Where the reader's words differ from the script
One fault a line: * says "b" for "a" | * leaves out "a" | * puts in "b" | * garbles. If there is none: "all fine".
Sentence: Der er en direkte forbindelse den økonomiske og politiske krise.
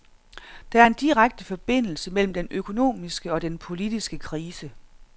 * puts in "mellem"
* puts in "den"